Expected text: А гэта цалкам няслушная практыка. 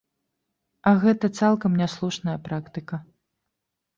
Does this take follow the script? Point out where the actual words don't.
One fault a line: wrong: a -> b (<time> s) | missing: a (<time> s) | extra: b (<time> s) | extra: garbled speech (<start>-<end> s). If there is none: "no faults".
no faults